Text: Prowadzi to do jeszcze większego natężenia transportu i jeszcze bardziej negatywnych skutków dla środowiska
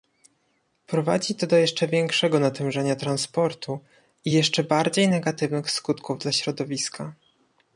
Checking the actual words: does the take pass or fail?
pass